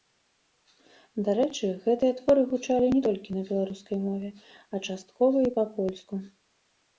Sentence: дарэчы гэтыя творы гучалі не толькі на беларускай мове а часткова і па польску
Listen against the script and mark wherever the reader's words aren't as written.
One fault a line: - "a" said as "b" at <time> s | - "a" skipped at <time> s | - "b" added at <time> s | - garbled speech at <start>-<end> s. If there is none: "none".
none